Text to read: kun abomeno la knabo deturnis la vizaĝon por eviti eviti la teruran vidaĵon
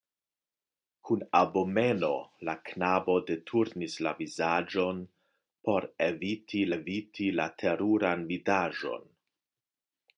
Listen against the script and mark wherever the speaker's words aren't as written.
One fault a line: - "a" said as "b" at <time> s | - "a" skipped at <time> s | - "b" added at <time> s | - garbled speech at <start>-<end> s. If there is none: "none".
none